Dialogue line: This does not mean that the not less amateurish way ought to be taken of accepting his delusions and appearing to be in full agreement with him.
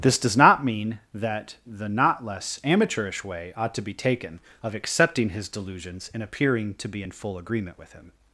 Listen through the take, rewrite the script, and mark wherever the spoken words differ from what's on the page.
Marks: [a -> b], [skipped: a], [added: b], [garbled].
This does not mean that the not less amateurish way ought to be taken of accepting his delusions and appearing to be in full agreement with him.